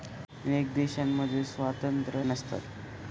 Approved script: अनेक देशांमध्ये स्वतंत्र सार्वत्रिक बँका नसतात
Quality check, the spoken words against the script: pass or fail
fail